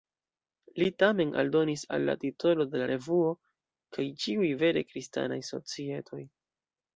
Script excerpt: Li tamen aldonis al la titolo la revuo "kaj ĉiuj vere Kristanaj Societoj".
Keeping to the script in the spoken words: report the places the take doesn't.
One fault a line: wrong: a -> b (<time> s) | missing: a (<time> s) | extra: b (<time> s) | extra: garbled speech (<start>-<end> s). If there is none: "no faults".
extra: de (2.7 s)